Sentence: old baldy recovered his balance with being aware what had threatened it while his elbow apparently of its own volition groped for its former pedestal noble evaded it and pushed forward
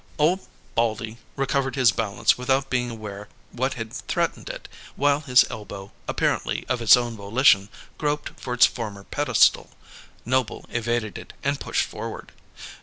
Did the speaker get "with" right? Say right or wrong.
wrong